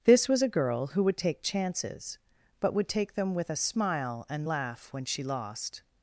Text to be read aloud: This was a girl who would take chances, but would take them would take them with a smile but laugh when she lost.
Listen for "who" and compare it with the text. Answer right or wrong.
right